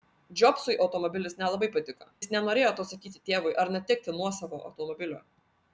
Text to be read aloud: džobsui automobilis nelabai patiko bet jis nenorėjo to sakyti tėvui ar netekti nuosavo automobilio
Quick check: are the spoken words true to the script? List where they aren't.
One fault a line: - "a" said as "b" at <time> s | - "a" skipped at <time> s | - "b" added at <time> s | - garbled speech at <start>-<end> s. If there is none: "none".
- "bet" skipped at 2.1 s